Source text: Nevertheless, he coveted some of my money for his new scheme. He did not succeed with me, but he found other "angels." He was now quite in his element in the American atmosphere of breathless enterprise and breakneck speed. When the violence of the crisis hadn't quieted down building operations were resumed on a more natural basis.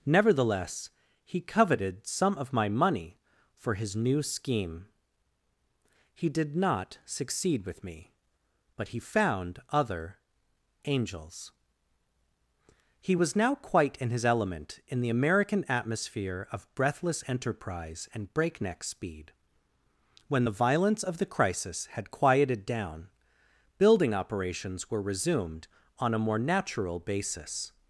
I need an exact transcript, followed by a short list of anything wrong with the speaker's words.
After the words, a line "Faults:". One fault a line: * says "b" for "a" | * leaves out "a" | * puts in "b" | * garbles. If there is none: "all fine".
Nevertheless, he coveted some of my money for his new scheme. He did not succeed with me, but he found other "angels." He was now quite in his element in the American atmosphere of breathless enterprise and breakneck speed. When the violence of the crisis had quieted down building operations were resumed on a more natural basis.
Faults:
* says "had" for "hadn't"